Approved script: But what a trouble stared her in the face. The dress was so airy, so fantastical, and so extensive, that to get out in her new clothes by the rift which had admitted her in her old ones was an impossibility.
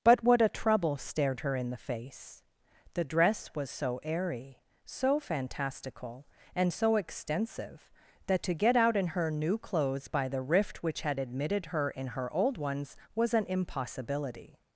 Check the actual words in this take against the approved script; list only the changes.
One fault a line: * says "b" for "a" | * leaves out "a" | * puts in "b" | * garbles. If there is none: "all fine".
all fine